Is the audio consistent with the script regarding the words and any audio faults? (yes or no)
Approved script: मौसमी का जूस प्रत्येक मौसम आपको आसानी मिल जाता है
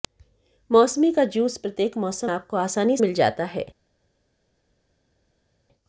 yes